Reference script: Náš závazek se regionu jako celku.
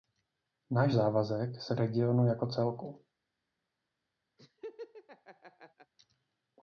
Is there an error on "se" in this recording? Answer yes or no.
no